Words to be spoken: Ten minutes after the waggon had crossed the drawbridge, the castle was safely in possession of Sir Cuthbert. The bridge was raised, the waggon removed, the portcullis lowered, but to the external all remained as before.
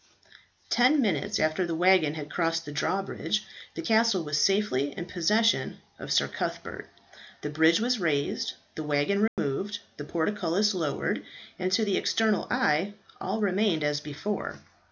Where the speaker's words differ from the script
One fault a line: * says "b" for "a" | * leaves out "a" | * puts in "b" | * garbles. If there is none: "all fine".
* says "and" for "but"
* puts in "eye"